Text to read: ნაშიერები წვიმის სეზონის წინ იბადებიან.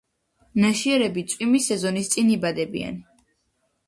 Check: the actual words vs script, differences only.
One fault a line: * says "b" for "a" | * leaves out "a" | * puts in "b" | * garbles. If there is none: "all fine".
all fine